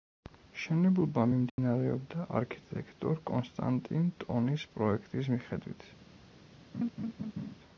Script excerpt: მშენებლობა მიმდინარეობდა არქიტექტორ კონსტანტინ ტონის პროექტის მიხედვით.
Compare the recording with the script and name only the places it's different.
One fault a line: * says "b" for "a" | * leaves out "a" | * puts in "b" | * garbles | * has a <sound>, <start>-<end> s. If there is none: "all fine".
* has a dropout, 1.5-1.6 s
* has a laugh, 6.7-7.5 s